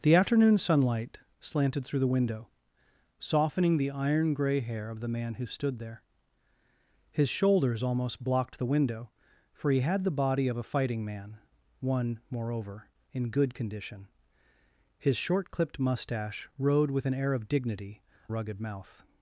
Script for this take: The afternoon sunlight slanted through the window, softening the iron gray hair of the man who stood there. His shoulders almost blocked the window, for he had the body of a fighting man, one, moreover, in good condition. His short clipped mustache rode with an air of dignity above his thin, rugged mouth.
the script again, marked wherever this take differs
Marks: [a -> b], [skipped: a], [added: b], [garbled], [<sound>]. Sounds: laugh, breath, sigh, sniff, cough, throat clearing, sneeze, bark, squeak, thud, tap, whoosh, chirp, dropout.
The afternoon sunlight slanted through the window, softening the iron gray hair of the man who stood there. His shoulders almost blocked the window, for he had the body of a fighting man, one, moreover, in good condition. His short clipped mustache rode with an air of dignity [skipped: above his thin,] rugged mouth.